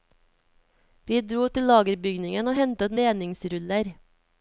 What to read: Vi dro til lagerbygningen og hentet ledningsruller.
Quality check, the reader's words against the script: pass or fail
pass